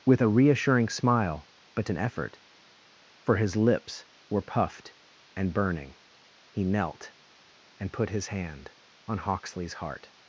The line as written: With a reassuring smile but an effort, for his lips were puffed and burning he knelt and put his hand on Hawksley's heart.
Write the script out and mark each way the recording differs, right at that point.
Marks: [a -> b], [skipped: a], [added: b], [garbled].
With a reassuring smile but an effort, for his lips were puffed and burning he knelt and put his hand on Hawksley's heart.